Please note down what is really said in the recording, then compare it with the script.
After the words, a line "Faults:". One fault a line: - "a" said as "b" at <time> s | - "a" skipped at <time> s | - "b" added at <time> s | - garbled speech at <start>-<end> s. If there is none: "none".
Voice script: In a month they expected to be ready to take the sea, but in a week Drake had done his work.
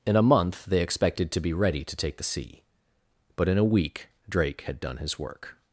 In a month they expected to be ready to take the sea, but in a week Drake had done his work.
Faults:
none